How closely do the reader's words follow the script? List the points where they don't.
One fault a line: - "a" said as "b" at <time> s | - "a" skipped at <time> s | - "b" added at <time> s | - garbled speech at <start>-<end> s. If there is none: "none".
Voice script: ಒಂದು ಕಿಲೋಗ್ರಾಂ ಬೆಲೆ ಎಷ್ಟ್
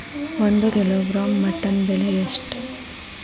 - "ಮಟನ್" added at 1.4 s